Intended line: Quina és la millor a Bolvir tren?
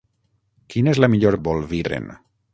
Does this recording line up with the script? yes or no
yes